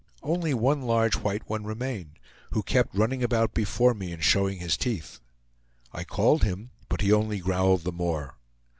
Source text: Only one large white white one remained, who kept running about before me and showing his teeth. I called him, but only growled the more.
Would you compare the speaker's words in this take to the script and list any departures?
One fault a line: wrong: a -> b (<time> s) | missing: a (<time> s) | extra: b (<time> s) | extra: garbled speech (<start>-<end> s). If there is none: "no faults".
missing: white (1.5 s)
extra: he (7.0 s)